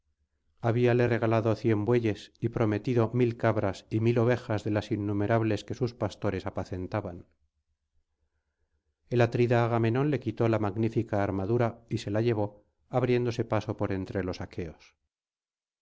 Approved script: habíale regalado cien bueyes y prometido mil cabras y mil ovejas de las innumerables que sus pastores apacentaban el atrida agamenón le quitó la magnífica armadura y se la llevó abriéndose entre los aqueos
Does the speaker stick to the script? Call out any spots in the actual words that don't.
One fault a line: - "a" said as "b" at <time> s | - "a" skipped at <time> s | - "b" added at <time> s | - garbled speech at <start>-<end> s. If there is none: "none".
- "paso por" added at 13.4 s